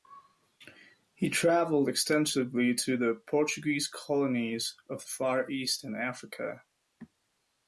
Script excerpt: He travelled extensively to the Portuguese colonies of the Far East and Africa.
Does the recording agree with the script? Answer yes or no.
yes